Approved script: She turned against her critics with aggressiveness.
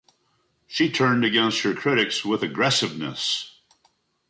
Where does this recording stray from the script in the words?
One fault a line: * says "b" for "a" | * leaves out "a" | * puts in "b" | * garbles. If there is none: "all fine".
all fine